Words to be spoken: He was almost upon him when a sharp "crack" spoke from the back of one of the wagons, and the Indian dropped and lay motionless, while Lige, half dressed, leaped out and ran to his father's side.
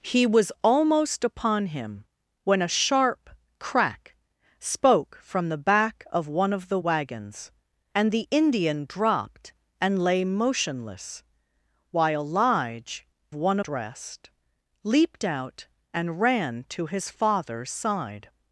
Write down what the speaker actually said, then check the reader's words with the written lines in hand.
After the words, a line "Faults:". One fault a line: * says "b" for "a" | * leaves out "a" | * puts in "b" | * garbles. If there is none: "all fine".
He was almost upon him when a sharp "crack" spoke from the back of one of the wagons, and the Indian dropped and lay motionless, while Lige, one dressed, leaped out and ran to his father's side.
Faults:
* says "one" for "half"